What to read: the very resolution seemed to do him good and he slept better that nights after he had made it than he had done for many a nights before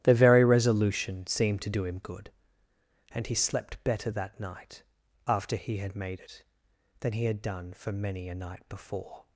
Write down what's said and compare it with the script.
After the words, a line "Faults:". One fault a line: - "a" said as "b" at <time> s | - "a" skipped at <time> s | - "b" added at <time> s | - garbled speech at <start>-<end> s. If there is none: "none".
the very resolution seemed to do him good and he slept better that night after he had made it than he had done for many a night before
Faults:
- "nights" said as "night" at 4.4 s
- "nights" said as "night" at 8.3 s